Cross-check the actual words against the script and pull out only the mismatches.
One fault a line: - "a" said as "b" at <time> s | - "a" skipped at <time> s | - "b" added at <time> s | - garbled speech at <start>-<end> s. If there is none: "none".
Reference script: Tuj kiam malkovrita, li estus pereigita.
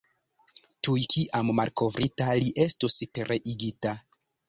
none